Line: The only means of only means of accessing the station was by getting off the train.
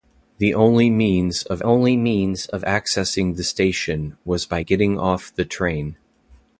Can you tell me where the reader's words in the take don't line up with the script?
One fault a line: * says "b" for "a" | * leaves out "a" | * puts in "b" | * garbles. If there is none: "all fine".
all fine